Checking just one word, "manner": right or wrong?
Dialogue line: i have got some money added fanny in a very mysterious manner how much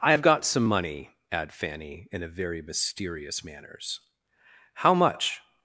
wrong